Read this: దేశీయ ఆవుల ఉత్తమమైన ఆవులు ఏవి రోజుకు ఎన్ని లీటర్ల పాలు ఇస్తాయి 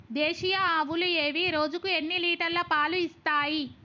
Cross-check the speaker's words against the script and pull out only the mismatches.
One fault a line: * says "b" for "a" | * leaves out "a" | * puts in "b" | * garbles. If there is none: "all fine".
* leaves out "ఆవుల ఉత్తమమైన"